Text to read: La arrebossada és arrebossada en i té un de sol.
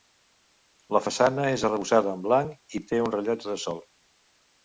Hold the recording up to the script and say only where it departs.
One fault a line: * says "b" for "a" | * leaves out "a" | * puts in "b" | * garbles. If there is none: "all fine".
* says "façana" for "arrebossada"
* puts in "blanc"
* puts in "rellotge"